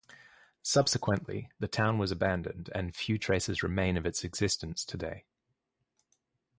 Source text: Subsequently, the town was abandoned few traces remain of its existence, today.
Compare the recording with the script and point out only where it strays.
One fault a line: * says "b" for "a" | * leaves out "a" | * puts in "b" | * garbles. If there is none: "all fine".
* puts in "and"